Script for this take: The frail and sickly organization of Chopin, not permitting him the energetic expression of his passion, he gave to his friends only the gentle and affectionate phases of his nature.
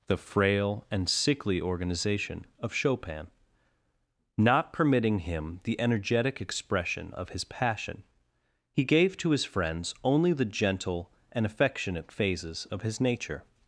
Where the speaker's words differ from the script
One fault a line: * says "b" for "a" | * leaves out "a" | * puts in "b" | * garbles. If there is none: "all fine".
all fine